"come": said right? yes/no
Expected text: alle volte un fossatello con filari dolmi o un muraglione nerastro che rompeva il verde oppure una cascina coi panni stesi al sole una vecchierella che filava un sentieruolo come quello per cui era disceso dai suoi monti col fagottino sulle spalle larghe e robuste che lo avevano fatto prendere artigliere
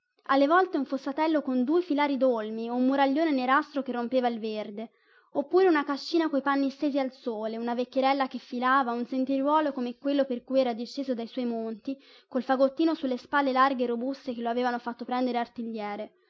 yes